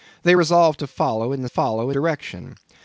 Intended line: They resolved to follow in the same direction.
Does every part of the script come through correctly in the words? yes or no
no